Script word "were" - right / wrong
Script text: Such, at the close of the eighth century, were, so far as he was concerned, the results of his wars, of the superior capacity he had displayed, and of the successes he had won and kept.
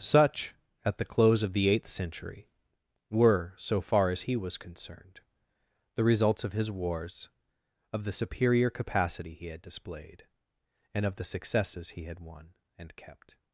right